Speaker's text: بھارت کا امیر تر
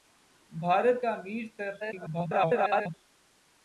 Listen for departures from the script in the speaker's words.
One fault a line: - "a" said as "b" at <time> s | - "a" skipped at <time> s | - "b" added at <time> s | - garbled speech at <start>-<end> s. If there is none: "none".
- garbled speech at 1.8-2.9 s